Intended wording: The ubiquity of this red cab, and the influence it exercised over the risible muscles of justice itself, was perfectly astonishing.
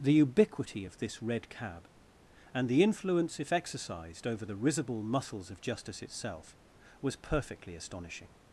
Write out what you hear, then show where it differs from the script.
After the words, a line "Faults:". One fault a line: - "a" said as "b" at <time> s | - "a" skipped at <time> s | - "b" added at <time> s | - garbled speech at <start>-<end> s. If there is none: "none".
The ubiquity of this red cab, and the influence if exercised over the risible muscles of justice itself, was perfectly astonishing.
Faults:
- "it" said as "if" at 3.4 s